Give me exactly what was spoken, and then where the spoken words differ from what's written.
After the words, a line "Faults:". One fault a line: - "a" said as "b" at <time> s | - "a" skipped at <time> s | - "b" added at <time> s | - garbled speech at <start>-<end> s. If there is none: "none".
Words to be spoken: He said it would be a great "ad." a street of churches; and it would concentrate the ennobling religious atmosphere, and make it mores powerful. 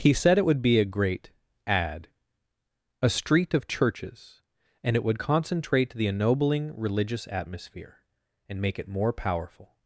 He said it would be a great "ad." a street of churches; and it would concentrate the ennobling religious atmosphere, and make it more powerful.
Faults:
- "mores" said as "more" at 8.9 s